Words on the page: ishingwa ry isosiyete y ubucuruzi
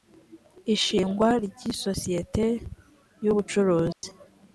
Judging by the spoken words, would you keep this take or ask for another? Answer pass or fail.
pass